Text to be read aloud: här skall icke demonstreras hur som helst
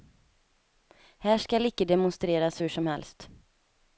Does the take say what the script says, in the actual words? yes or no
yes